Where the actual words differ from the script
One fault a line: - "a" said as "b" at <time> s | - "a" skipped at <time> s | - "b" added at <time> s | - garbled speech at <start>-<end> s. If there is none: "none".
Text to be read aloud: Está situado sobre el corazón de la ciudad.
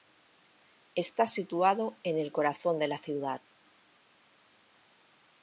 - "sobre" said as "en" at 2.0 s